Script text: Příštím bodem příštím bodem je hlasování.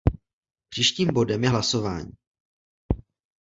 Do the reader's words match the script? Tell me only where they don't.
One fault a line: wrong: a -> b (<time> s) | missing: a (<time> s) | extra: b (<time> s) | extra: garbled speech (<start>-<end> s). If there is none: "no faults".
missing: příštím bodem (1.4 s)